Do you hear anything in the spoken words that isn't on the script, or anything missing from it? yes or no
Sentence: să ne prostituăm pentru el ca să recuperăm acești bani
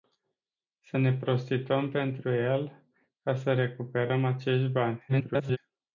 yes